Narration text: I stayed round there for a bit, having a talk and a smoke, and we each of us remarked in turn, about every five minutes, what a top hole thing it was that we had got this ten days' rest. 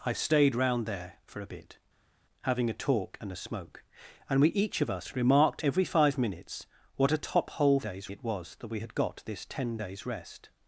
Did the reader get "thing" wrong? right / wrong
wrong